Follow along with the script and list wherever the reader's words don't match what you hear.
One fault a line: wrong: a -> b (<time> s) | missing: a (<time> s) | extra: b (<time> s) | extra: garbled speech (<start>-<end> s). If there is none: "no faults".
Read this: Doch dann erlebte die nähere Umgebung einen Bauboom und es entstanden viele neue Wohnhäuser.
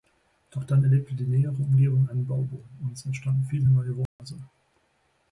no faults